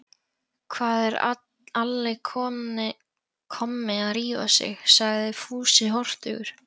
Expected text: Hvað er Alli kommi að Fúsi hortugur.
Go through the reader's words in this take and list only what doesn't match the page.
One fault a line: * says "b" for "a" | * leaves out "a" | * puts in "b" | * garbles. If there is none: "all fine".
* puts in "rífa sig sagði"